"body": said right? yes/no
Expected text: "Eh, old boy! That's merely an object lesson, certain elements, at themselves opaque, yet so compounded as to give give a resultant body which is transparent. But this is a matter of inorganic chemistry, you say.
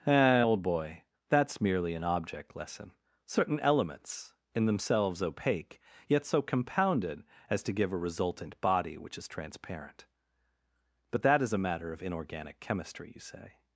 yes